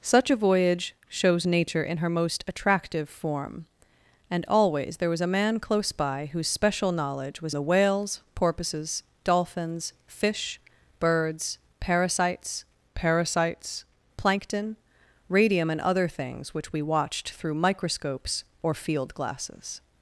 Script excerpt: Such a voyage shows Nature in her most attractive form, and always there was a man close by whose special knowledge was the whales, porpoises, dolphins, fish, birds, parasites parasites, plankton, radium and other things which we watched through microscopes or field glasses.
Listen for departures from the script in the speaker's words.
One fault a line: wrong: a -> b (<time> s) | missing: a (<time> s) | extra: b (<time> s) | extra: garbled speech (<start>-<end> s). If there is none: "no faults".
no faults